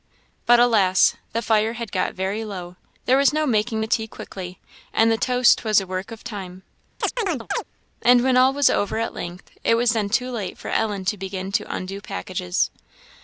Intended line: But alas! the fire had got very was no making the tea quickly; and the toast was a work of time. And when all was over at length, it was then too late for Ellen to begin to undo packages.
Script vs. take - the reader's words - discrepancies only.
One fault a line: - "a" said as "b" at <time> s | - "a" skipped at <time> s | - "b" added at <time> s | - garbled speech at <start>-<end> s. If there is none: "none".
- "low there" added at 2.4 s